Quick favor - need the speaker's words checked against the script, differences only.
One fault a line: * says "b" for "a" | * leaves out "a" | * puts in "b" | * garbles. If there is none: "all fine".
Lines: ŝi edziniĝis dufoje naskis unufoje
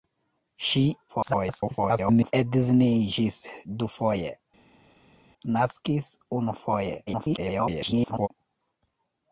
* garbles
* garbles